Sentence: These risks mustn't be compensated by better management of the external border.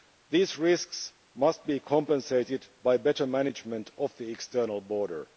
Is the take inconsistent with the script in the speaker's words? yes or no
yes